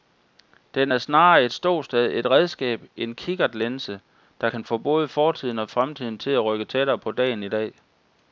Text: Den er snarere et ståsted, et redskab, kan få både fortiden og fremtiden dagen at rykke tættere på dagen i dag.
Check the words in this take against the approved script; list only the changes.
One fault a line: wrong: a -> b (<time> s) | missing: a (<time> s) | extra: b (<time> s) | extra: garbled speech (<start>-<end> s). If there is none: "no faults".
extra: en kikkertlinse der (3.0 s)
wrong: dagen -> til (6.2 s)